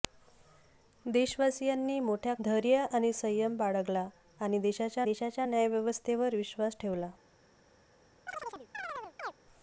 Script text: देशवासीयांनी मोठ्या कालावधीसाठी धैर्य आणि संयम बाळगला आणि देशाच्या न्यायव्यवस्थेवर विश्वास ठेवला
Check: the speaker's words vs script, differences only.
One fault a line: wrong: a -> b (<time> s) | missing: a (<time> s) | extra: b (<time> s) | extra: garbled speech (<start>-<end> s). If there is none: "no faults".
missing: कालावधीसाठी (2.3 s)
extra: देशाच्या (5.0 s)